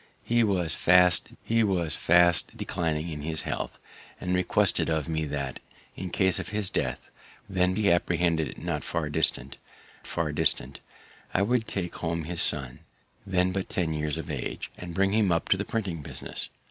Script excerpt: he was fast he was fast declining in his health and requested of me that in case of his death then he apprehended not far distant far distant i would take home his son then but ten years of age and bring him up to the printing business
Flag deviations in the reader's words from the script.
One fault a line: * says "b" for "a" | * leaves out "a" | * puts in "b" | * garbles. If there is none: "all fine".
all fine